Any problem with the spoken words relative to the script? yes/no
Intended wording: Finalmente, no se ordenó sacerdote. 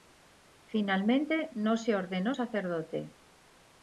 no